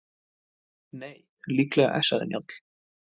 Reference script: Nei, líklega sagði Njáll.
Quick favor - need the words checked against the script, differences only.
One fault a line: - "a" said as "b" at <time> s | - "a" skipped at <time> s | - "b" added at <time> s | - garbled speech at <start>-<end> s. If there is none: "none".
none